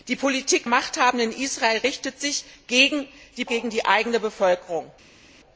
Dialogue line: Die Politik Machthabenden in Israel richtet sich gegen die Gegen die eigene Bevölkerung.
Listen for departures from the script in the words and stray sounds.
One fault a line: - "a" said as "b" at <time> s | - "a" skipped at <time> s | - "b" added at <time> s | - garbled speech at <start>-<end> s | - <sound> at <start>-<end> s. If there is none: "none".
none